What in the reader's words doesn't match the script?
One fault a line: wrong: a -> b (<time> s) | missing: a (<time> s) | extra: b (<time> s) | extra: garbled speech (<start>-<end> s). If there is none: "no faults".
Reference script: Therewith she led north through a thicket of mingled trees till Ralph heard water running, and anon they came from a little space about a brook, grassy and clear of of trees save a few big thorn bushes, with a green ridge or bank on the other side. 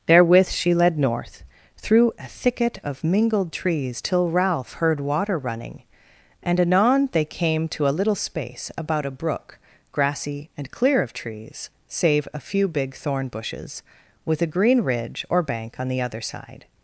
wrong: from -> to (7.7 s)
missing: of (11.1 s)